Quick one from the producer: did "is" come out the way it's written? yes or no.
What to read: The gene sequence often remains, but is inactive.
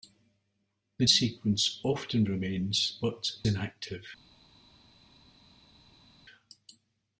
no